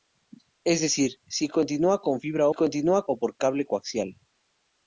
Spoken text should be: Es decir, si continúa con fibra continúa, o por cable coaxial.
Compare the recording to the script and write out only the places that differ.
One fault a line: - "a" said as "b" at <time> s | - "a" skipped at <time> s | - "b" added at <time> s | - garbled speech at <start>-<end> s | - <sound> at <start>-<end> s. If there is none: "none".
none